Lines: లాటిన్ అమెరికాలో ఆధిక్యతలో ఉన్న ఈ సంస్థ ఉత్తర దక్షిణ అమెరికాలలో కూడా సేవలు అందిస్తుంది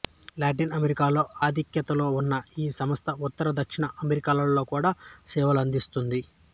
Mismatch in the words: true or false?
false